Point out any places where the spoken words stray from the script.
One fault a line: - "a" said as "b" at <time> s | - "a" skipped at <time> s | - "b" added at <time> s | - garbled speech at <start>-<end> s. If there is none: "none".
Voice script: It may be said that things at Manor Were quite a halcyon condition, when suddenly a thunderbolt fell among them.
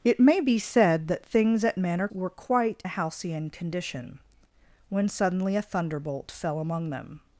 none